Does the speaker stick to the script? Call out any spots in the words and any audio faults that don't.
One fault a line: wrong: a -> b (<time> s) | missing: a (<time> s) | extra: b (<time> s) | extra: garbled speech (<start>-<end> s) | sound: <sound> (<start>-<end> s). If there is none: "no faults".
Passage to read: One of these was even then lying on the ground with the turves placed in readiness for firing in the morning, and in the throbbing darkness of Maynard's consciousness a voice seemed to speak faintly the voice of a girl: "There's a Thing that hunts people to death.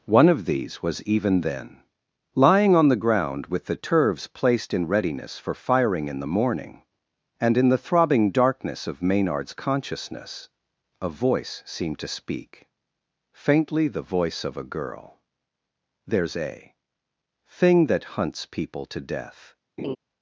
sound: laugh (19.8-20.0 s)